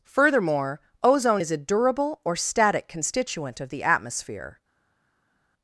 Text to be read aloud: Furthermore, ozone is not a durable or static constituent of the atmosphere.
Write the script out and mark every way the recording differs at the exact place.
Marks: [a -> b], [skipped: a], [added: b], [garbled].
Furthermore, ozone is [skipped: not] a durable or static constituent of the atmosphere.